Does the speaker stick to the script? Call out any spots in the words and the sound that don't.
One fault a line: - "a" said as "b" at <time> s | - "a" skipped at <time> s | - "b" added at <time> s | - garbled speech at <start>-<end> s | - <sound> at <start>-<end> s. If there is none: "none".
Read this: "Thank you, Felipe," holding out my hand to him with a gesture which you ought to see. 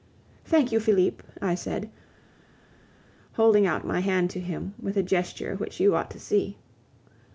- "I said" added at 1.4 s